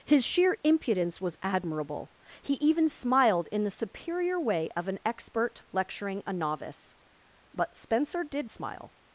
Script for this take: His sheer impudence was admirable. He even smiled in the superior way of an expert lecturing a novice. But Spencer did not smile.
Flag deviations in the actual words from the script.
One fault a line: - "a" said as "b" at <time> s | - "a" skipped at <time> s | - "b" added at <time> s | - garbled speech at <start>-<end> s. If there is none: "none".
- "not" skipped at 8.5 s